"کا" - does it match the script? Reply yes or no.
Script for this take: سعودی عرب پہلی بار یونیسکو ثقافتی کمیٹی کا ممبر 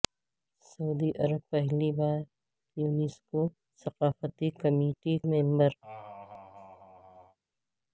no